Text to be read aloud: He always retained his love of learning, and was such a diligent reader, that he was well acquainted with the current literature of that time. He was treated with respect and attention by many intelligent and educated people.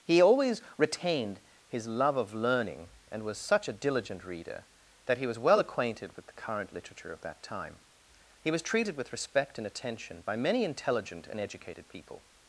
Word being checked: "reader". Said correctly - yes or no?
yes